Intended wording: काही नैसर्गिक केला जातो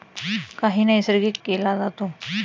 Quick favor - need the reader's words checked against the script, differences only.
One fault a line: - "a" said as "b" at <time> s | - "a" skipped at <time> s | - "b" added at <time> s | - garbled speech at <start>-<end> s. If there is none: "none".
none